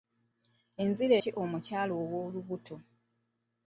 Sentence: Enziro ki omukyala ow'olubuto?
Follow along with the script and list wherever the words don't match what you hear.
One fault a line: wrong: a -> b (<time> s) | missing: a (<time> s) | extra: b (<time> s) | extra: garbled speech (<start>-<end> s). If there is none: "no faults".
no faults